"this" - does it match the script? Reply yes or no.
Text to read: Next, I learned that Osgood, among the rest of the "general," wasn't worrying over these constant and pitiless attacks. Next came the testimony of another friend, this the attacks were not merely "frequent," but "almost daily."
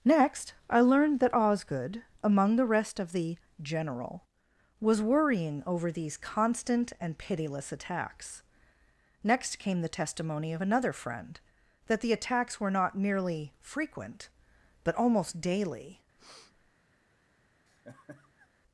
no